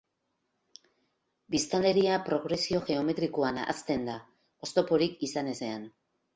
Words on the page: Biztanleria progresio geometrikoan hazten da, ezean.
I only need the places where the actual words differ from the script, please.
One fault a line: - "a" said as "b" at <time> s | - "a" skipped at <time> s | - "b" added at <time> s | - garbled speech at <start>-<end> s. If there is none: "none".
- "oztoporik izan" added at 4.7 s